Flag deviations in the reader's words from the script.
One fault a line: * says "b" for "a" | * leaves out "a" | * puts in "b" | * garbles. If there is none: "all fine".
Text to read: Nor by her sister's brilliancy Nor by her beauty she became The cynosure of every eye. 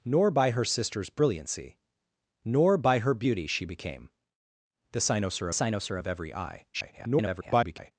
* puts in "cynosure"
* garbles